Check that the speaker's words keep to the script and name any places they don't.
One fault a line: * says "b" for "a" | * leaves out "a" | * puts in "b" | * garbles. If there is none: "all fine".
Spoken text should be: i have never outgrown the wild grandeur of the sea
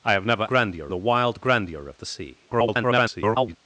* says "grandeur" for "outgrown"
* garbles